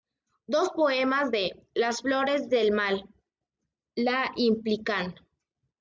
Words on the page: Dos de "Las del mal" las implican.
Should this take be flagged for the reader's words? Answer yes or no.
yes